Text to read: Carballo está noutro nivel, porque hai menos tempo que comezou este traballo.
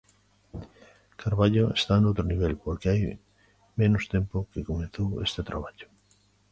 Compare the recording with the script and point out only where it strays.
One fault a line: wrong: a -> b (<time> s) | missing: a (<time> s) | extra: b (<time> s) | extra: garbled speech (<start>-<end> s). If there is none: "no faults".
no faults